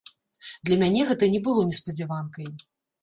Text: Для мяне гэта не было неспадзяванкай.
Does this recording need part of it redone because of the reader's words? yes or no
no